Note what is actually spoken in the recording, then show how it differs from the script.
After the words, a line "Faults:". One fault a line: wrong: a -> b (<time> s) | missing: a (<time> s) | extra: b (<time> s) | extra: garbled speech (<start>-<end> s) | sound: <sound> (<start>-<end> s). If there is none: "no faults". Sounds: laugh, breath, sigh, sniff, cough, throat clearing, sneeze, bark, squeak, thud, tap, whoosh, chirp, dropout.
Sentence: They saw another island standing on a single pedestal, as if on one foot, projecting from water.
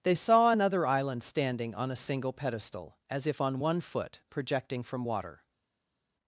They saw another island standing on a single pedestal, as if on one foot, projecting from water.
Faults:
no faults